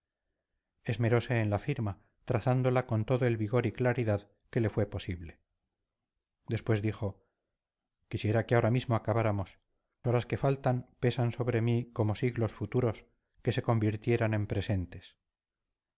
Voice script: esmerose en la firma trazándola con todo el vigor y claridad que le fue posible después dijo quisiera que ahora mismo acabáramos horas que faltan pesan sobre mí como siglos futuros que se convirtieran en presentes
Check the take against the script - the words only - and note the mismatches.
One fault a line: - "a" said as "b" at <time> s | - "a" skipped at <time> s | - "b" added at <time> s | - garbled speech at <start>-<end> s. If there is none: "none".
none